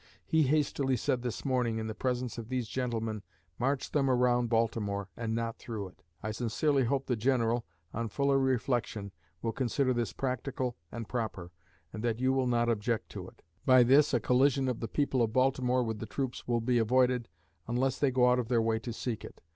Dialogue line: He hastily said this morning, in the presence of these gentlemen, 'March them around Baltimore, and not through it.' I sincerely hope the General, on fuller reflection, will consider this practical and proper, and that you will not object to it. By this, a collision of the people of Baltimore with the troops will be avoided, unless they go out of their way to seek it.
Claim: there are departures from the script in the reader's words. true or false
false